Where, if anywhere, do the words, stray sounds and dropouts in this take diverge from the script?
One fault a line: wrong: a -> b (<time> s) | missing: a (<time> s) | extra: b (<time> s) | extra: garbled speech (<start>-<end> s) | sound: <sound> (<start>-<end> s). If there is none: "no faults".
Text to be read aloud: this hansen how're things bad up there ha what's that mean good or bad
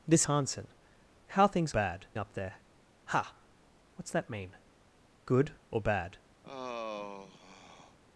sound: sigh (6.4-8.0 s)